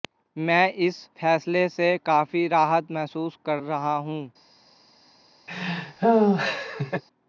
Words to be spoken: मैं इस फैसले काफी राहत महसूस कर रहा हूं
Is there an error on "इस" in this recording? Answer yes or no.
no